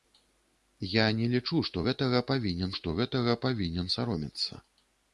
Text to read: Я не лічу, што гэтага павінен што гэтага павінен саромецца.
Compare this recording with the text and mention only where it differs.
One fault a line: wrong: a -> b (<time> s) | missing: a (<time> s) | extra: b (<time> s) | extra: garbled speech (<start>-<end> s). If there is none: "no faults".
no faults